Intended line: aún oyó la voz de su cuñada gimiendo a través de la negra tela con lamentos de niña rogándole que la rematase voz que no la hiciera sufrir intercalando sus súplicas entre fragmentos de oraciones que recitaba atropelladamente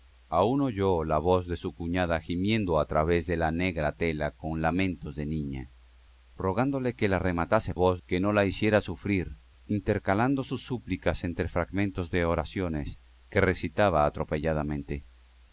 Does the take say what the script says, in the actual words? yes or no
yes